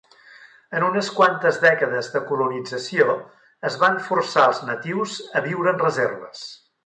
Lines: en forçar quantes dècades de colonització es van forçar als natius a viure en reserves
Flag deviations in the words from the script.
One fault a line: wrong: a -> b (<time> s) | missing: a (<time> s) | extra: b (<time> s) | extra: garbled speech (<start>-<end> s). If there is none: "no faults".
wrong: forçar -> unes (0.8 s)